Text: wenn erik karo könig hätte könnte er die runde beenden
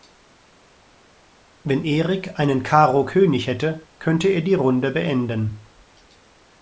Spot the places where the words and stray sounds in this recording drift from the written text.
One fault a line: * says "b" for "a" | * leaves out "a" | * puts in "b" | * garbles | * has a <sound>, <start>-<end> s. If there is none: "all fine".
* puts in "einen"